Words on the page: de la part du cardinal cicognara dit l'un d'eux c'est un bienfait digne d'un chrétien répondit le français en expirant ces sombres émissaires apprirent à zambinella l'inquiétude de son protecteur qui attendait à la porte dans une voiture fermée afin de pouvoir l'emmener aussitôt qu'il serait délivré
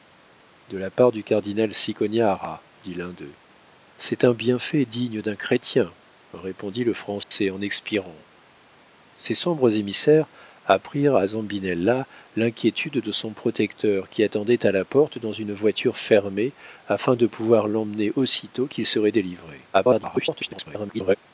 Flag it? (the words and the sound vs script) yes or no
yes